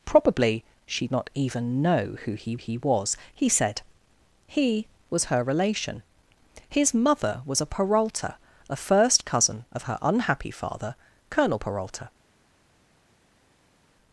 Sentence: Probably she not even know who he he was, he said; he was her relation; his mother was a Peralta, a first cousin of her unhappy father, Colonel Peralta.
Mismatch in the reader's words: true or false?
false